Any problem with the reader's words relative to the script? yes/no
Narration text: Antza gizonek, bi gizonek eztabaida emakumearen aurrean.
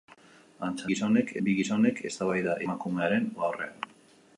no